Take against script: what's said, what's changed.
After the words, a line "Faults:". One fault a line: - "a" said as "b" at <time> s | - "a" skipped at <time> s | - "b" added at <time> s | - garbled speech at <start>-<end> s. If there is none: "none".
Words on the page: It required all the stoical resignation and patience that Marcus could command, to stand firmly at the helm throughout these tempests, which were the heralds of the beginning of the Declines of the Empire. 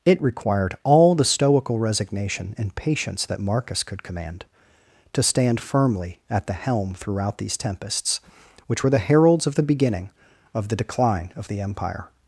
It required all the stoical resignation and patience that Marcus could command, to stand firmly at the helm throughout these tempests, which were the heralds of the beginning of the Decline of the Empire.
Faults:
- "Declines" said as "Decline" at 10.7 s